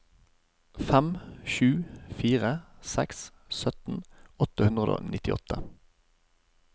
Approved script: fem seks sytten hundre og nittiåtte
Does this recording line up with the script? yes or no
no